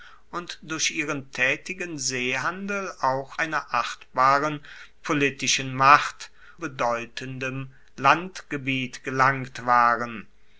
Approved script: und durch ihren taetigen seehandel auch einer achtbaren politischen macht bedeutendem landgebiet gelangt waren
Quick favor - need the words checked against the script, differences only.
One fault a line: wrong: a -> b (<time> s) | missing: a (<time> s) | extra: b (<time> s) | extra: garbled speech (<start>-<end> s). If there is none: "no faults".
no faults